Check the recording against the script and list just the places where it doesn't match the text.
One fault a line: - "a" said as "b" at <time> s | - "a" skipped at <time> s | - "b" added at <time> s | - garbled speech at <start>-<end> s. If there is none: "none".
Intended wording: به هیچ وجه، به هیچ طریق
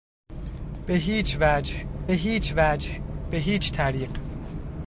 - "هیچ وجه" added at 2.1 s